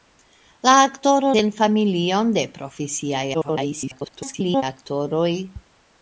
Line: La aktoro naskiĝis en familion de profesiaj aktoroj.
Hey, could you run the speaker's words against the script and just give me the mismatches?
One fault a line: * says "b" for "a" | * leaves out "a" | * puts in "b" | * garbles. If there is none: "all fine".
* leaves out "naskiĝis"
* garbles